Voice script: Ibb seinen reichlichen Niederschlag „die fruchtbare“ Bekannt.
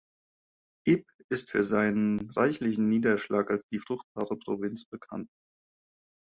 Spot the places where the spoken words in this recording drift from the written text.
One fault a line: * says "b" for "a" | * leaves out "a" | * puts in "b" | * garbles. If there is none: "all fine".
* puts in "ist für"
* puts in "als"
* puts in "Provinz"